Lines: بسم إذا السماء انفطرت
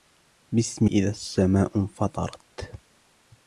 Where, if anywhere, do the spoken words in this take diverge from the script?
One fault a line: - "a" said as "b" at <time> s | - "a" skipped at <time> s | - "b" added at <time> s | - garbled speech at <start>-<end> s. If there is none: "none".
none